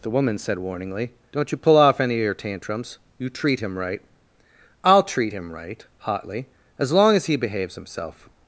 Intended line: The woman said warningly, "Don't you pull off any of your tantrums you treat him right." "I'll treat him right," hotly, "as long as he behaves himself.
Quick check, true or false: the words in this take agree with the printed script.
true